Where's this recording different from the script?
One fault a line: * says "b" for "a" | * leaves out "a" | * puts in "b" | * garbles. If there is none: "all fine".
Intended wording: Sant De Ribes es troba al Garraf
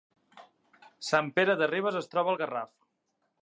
* puts in "Pere"